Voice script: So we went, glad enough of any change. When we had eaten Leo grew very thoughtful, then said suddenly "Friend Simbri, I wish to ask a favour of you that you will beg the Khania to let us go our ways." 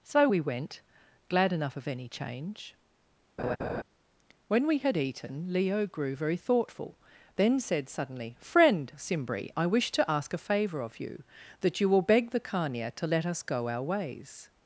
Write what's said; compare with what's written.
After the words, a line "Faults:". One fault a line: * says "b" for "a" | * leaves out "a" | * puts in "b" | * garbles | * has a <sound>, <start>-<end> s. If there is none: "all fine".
So we went, glad enough of any change. When we had eaten Leo grew very thoughtful, then said suddenly "Friend Simbri, I wish to ask a favour of you that you will beg the Khania to let us go our ways."
Faults:
* has a laugh, 3.4-3.8 s